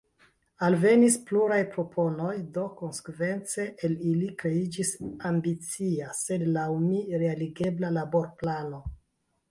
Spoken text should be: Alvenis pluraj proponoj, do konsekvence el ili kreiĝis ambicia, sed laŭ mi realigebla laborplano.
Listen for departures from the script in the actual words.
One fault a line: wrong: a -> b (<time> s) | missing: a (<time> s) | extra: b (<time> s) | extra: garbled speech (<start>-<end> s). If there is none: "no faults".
no faults